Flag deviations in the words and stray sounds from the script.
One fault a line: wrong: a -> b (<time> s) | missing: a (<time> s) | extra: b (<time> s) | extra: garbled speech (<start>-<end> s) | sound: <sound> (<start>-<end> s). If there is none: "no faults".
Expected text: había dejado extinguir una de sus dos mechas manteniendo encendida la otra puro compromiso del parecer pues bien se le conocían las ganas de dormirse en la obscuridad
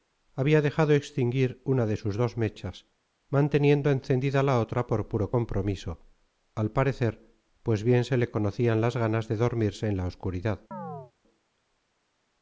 extra: por (4.9 s)
wrong: del -> al (6.5 s)
sound: chirp (10.7-11.1 s)